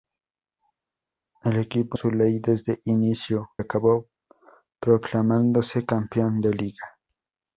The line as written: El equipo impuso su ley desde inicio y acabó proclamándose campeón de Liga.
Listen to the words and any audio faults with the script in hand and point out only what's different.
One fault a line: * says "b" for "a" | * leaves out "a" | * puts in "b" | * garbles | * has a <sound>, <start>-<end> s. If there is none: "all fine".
* leaves out "impuso"
* leaves out "y"